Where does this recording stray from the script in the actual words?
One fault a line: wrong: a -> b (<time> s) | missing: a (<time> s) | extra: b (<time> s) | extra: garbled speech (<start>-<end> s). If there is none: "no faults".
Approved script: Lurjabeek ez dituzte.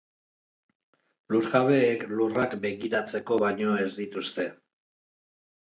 extra: lurrak begiratzeko baino (2.1 s)